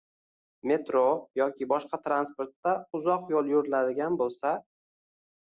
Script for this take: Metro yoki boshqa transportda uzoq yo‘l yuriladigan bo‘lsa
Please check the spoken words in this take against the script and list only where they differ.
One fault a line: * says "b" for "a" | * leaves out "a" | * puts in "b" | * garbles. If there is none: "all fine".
all fine